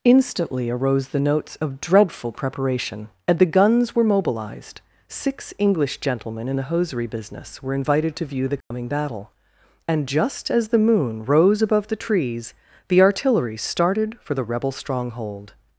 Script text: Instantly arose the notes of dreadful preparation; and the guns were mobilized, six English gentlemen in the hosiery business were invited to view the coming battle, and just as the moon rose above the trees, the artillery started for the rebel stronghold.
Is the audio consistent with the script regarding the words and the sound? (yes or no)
no